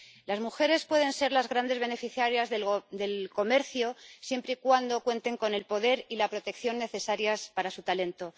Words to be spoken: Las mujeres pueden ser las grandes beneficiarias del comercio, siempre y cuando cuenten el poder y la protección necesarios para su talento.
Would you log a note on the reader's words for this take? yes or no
yes